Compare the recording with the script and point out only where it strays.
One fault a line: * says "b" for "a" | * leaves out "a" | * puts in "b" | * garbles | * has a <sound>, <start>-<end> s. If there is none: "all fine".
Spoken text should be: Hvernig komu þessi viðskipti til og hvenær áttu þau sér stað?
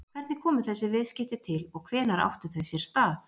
all fine